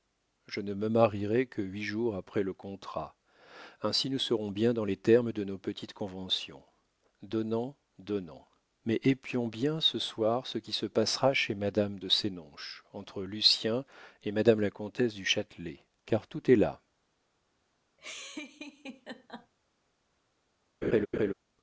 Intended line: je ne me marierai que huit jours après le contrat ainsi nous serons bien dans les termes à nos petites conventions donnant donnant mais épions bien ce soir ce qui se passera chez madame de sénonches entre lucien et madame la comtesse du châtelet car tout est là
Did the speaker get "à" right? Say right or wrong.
wrong